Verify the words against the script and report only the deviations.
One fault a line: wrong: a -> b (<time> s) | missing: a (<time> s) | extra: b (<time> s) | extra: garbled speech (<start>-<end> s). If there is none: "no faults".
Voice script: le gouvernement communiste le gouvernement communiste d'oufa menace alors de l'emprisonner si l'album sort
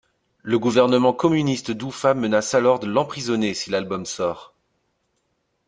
missing: le gouvernement communiste (1.7 s)